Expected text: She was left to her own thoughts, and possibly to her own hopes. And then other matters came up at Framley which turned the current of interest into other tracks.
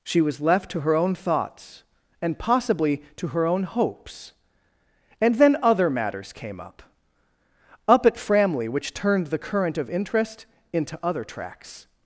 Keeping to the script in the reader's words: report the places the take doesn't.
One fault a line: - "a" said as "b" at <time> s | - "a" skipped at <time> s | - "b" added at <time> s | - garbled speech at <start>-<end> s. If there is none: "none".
- "up" added at 7.9 s